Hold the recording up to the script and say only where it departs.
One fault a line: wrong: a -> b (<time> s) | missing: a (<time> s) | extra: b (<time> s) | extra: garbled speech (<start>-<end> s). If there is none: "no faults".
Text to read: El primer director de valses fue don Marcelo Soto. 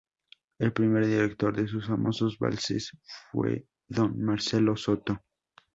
extra: sus famosos (1.7 s)